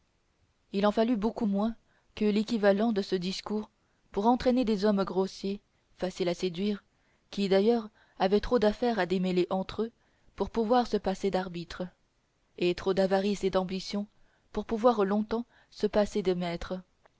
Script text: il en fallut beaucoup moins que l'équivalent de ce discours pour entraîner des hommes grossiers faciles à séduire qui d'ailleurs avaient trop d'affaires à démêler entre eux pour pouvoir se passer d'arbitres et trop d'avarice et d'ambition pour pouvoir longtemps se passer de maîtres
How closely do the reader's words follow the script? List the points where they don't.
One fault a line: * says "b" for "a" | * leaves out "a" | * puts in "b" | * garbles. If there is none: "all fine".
all fine